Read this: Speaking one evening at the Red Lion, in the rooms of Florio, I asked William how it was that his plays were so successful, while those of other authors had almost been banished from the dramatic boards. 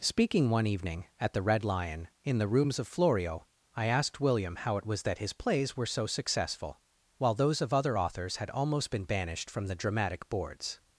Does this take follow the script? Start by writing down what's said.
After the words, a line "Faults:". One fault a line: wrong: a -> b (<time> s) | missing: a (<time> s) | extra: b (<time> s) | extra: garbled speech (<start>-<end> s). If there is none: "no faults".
Speaking one evening at the Red Lion, in the rooms of Florio, I asked William how it was that his plays were so successful, while those of other authors had almost been banished from the dramatic boards.
Faults:
no faults